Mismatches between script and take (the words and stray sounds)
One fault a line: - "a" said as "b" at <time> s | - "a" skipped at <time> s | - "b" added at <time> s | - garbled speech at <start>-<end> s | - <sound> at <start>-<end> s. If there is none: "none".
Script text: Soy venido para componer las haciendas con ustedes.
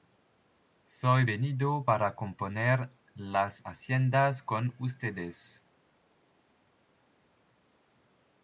none